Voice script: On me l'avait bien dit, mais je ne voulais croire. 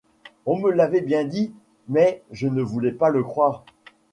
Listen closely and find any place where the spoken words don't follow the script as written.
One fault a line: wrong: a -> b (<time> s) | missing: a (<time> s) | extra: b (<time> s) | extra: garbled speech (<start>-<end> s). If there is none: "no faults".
extra: pas le (2.9 s)